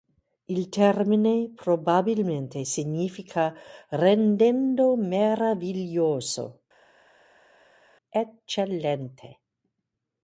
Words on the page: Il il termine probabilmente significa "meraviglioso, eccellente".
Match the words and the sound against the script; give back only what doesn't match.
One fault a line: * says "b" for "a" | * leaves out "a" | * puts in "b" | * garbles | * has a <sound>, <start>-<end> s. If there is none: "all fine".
* leaves out "il"
* puts in "rendendo"